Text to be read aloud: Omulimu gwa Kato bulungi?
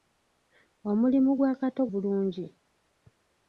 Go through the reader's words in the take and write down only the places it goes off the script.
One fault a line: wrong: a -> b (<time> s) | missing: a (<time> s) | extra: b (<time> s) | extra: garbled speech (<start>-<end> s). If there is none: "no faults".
no faults